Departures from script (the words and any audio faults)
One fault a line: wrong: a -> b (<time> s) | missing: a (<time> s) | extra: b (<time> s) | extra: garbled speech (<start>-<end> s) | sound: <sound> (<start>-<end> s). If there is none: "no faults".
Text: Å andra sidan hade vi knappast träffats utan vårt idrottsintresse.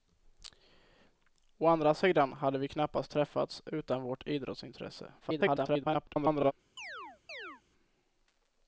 extra: garbled speech (5.2-6.5 s)
sound: chirp (6.8-7.6 s)